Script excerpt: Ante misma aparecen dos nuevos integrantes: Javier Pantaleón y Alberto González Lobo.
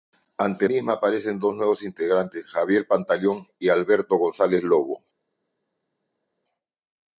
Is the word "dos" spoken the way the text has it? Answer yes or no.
yes